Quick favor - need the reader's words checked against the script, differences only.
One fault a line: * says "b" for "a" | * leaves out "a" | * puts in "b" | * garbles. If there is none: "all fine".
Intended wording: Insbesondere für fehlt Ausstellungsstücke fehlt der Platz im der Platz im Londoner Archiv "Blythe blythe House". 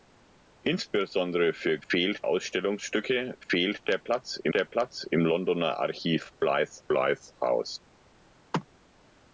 all fine